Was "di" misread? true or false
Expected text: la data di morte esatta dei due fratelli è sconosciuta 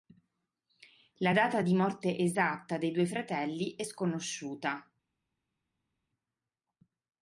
false